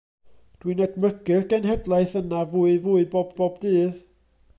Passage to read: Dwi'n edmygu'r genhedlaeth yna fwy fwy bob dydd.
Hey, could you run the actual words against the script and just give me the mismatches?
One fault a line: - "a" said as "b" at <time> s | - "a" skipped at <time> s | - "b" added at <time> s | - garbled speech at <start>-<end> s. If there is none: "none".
- "bob" added at 3.4 s